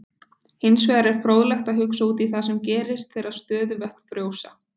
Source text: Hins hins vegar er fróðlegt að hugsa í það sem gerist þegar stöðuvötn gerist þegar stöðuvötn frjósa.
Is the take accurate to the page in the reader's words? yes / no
no